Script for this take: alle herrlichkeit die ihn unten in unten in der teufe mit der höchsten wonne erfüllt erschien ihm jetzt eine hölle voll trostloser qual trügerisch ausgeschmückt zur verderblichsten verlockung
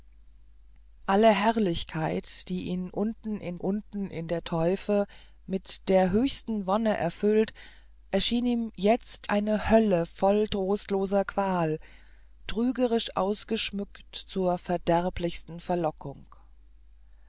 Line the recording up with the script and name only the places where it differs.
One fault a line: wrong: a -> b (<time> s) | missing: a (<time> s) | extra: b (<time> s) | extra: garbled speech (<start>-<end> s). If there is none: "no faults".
no faults